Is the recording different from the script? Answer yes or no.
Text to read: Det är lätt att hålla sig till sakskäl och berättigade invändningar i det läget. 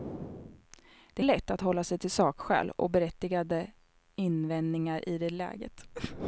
no